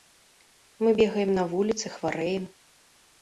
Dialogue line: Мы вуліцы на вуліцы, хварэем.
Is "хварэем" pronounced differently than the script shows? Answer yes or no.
no